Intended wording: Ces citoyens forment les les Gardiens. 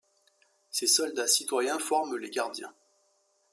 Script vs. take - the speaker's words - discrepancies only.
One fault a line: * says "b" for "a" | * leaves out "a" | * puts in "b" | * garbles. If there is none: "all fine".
* puts in "soldats"
* leaves out "les"